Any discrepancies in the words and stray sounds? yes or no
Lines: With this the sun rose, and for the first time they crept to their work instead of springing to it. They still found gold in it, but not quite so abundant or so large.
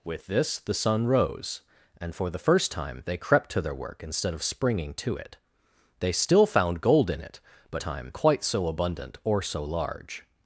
yes